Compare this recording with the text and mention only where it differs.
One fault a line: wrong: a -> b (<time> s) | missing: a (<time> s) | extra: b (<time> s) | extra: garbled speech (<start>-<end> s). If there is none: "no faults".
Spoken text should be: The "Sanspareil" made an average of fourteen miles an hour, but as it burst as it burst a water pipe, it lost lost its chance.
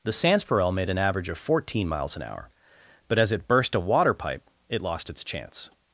missing: as it burst (3.8 s)
missing: lost (5.1 s)